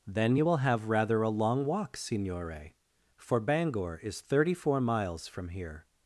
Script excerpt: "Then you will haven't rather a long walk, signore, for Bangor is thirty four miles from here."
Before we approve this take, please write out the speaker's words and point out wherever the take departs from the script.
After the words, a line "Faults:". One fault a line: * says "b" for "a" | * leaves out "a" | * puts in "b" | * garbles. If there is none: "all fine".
"Then you will have rather a long walk, signore, for Bangor is thirty four miles from here."
Faults:
* says "have" for "haven't"